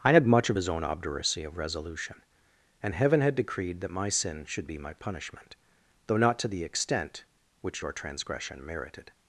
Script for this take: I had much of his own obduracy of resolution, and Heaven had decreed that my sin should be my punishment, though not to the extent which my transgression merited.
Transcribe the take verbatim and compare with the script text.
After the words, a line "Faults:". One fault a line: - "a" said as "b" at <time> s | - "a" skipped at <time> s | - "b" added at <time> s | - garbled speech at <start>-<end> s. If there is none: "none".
I had much of his own obduracy of resolution, and Heaven had decreed that my sin should be my punishment, though not to the extent which your transgression merited.
Faults:
- "my" said as "your" at 7.8 s